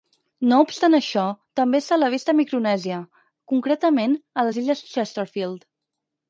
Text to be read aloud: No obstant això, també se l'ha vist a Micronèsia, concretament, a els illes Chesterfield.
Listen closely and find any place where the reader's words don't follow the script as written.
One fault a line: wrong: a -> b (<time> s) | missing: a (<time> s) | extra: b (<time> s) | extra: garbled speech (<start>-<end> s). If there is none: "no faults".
wrong: els -> les (4.5 s)